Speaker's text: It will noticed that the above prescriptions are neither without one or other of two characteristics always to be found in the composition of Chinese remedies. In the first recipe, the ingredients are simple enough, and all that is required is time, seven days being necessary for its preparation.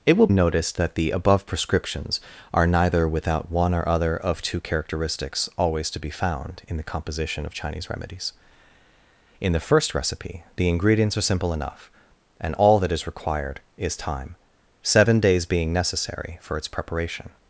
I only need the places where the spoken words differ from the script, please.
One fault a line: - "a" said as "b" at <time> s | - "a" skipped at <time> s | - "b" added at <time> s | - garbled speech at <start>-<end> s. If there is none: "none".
none